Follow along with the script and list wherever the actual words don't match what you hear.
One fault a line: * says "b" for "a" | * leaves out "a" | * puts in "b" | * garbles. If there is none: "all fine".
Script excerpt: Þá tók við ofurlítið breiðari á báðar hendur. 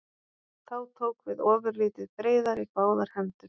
all fine